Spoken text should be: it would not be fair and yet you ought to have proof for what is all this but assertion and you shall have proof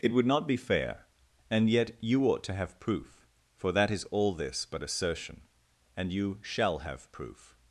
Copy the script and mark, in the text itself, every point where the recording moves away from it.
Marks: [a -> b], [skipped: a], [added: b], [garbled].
it would not be fair and yet you ought to have proof for [what -> that] is all this but assertion and you shall have proof